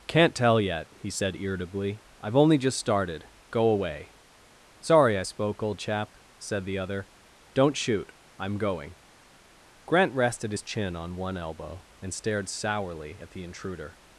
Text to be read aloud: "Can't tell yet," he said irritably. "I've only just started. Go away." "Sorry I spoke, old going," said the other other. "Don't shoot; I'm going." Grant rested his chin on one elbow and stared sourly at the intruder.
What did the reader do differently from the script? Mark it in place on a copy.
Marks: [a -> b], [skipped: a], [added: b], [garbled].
"Can't tell yet," he said irritably. "I've only just started. Go away." "Sorry I spoke, old [going," -> chap] said the other [skipped: other.] "Don't shoot; I'm going." Grant rested his chin on one elbow and stared sourly at the intruder.